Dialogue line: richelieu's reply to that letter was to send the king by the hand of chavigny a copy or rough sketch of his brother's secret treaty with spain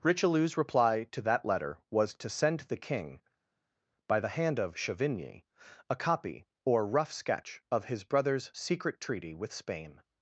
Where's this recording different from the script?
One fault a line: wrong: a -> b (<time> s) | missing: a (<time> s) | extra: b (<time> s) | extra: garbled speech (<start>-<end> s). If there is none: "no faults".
no faults